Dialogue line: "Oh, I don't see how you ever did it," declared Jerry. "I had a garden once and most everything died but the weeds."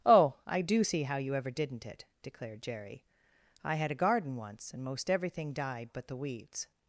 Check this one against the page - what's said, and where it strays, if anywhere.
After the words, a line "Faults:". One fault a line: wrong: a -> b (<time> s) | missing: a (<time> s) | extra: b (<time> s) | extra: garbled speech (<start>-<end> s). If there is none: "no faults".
"Oh, I do see how you ever didn't it," declared Jerry. "I had a garden once and most everything died but the weeds."
Faults:
wrong: don't -> do (0.6 s)
wrong: did -> didn't (1.5 s)